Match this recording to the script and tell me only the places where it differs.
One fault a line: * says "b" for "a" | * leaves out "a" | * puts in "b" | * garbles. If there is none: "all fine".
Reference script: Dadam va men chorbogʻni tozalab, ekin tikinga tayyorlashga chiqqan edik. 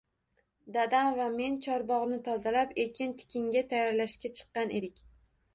all fine